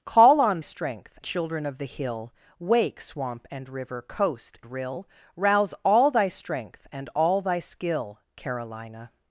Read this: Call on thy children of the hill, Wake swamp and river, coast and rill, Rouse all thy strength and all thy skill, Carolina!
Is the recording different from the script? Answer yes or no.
yes